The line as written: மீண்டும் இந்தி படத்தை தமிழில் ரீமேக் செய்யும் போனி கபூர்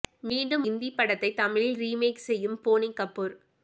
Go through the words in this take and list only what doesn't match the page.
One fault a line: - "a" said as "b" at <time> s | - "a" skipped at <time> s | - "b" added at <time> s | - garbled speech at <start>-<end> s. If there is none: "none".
none